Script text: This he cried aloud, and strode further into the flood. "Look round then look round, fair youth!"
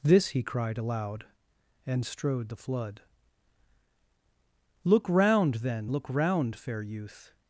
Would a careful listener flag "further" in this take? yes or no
yes